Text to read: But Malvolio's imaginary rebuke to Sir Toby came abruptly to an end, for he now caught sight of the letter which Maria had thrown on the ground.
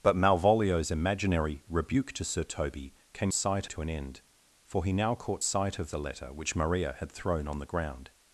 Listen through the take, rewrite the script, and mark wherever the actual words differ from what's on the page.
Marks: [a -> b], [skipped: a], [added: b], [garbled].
But Malvolio's imaginary rebuke to Sir Toby came [abruptly -> sight] to an end, for he now caught sight of the letter which Maria had thrown on the ground.